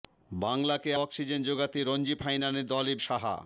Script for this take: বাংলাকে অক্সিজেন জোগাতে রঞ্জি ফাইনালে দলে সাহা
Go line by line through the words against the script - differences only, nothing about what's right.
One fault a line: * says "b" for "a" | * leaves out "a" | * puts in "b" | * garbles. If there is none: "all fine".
all fine